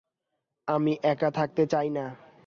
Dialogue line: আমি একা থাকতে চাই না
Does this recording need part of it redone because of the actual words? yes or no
no